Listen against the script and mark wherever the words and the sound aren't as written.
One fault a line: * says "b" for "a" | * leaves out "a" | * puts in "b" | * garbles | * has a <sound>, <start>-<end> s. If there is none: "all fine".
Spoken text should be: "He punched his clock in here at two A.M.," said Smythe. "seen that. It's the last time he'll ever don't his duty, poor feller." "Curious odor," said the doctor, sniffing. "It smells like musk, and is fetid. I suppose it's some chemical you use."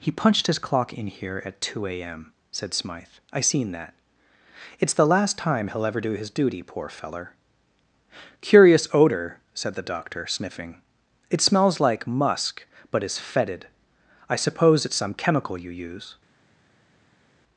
* puts in "I"
* says "do" for "don't"
* says "but" for "and"